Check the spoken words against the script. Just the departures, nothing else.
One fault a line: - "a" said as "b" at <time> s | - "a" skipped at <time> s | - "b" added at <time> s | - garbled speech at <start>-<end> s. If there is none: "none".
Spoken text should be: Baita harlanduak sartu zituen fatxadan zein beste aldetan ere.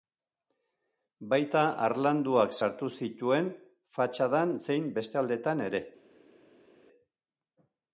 none